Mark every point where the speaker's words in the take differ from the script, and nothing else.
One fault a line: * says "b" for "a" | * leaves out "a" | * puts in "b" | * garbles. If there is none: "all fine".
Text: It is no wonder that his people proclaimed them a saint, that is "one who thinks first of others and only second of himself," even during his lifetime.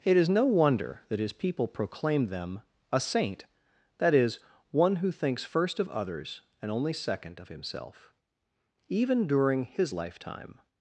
all fine